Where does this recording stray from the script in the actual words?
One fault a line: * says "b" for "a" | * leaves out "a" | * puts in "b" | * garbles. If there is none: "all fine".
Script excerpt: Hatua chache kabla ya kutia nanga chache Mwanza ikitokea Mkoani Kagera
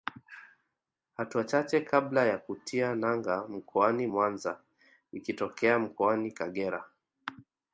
* says "mkoani" for "chache"